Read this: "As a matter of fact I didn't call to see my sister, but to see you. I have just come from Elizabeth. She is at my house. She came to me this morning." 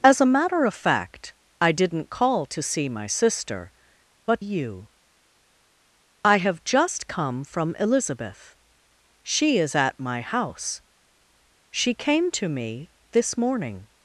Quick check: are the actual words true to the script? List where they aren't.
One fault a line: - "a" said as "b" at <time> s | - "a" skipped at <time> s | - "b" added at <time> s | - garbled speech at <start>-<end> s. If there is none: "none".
- "to see" skipped at 4.4 s